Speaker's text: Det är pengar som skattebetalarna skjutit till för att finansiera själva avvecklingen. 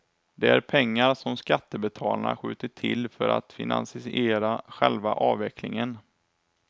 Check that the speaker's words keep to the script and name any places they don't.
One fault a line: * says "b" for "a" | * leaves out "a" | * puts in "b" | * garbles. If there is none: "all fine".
all fine